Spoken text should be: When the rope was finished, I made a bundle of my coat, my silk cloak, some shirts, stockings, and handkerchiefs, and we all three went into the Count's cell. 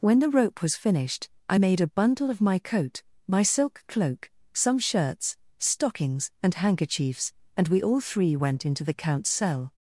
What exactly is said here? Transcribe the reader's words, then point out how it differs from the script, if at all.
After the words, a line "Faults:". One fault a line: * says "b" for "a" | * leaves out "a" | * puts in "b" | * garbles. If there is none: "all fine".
When the rope was finished, I made a bundle of my coat, my silk cloak, some shirts, stockings, and handkerchiefs, and we all three went into the Count's cell.
Faults:
all fine